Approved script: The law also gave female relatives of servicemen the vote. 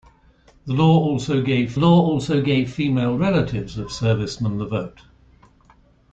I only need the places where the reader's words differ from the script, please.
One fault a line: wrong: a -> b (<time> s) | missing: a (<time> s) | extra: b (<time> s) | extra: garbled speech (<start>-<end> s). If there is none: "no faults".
extra: law also gave (1.8 s)